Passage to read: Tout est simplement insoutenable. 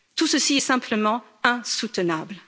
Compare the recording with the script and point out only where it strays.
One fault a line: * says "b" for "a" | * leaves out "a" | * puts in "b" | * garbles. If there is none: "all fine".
* puts in "ceci"